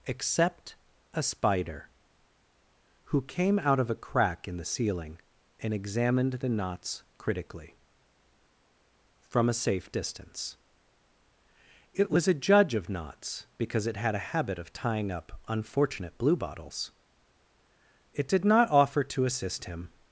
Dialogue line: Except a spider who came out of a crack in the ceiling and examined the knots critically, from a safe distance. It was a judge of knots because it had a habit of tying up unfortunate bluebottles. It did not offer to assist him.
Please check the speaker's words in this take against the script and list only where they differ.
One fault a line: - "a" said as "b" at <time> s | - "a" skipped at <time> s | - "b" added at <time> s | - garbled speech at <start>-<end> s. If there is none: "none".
none